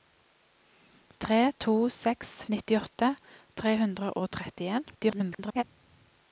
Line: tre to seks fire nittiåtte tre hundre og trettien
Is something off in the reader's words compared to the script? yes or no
yes